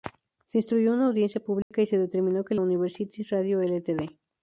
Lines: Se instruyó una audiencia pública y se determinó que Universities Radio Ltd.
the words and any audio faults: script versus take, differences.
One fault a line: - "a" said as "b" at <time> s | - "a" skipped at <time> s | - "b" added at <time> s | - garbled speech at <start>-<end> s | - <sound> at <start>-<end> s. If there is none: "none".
- dropout at 1.6-1.7 s